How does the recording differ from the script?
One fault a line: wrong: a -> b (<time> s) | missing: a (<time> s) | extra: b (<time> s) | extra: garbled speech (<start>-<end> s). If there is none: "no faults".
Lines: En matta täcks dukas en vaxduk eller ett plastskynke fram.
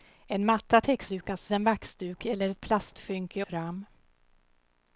no faults